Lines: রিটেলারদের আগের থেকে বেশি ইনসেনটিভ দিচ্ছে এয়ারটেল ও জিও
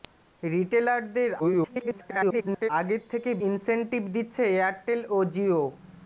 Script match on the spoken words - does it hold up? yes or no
no